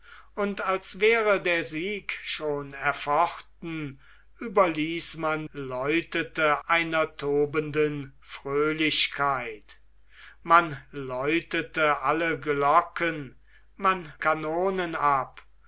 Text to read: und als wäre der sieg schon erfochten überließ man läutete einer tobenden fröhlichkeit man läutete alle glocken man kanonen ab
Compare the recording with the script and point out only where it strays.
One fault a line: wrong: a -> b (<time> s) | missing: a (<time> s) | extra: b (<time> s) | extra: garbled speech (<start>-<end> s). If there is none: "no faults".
no faults